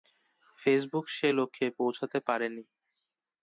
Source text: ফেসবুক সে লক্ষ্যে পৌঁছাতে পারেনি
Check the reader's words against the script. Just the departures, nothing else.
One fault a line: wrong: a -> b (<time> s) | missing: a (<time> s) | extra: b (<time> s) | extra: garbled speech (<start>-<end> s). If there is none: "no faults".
no faults